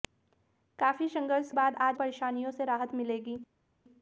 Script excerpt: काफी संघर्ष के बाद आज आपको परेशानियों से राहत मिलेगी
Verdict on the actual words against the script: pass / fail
fail